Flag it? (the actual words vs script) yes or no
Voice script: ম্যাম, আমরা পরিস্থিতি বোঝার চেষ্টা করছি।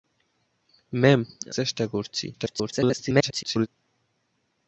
yes